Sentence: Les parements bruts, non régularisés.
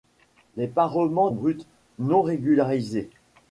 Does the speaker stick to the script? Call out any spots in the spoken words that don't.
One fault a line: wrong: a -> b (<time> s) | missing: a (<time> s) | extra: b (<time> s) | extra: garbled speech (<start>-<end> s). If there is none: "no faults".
no faults